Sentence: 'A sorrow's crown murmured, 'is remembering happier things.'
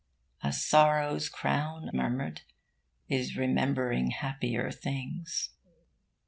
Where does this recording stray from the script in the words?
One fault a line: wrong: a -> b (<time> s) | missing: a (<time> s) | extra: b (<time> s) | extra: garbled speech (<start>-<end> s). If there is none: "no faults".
no faults